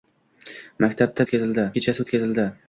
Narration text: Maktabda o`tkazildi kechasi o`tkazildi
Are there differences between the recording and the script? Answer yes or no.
no